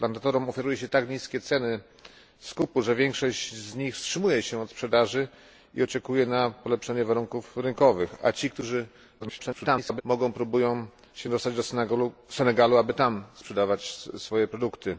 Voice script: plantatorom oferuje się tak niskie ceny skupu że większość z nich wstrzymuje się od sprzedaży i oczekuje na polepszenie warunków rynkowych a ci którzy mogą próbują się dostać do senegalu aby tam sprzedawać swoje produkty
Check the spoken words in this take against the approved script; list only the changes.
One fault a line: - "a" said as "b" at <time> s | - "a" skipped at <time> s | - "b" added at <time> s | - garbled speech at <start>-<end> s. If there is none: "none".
- garbled speech at 9.2-10.0 s